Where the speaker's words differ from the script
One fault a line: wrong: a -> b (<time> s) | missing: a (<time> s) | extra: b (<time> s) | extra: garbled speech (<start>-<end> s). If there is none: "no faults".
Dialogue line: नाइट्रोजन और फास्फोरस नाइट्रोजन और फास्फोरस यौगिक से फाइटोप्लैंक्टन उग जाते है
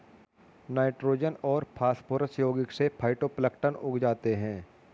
missing: नाइट्रोजन और फास्फोरस (2.4 s)